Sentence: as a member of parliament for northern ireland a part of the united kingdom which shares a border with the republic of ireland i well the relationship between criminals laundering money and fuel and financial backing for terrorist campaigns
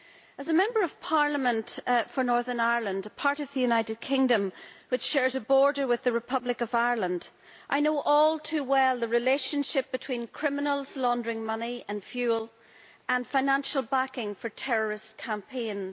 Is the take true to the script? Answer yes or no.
no